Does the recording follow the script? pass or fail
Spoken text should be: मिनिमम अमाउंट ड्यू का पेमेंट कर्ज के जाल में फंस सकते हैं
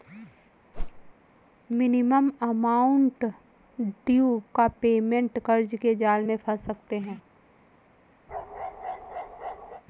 pass